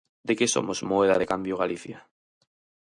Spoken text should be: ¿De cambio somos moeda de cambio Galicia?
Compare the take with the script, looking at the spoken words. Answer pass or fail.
fail